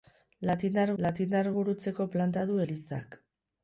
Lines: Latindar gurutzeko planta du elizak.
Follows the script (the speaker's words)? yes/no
no